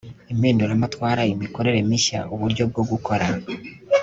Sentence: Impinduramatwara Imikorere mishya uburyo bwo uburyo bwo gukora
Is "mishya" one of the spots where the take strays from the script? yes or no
no